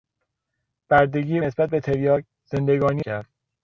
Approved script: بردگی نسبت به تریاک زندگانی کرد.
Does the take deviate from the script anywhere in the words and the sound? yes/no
no